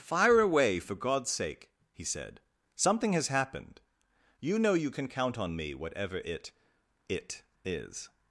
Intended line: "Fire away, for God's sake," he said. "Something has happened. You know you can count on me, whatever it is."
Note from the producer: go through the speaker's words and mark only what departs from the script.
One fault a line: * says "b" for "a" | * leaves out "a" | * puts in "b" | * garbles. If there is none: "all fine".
* puts in "it"